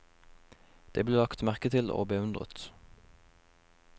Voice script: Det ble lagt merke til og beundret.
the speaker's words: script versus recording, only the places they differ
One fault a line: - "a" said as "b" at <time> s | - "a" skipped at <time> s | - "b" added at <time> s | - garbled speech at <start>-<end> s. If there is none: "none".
none